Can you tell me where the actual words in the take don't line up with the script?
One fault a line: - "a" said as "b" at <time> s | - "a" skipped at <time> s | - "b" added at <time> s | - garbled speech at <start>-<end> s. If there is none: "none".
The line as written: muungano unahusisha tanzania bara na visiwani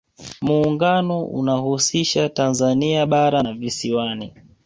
none